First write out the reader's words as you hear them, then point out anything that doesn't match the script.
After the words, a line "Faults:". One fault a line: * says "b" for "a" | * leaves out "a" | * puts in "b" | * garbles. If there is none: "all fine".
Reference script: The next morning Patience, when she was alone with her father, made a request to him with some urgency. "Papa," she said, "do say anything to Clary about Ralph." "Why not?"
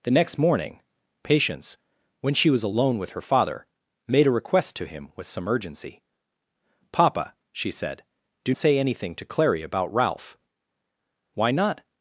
The next morning Patience, when she was alone with her father, made a request to him with some urgency. "Papa," she said, "do say anything to Clary about Ralph." "Why not?"
Faults:
all fine